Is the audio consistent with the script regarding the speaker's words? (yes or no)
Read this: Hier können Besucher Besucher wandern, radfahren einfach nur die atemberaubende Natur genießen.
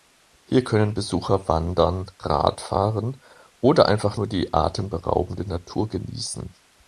no